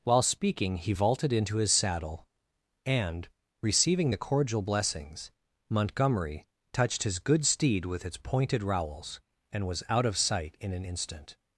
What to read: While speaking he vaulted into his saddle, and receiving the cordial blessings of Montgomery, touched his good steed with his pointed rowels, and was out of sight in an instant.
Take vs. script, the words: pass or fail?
fail